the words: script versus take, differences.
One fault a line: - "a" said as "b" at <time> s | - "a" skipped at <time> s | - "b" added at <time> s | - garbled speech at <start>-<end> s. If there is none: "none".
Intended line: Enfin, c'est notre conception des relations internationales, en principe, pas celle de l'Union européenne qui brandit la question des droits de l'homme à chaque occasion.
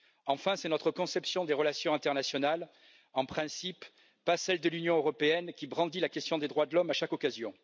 none